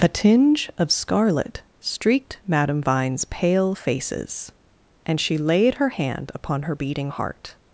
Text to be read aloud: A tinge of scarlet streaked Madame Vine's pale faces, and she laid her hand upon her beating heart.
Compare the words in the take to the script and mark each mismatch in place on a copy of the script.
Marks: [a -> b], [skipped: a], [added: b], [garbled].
A tinge of scarlet streaked Madame Vine's pale faces, and she laid her hand upon her beating heart.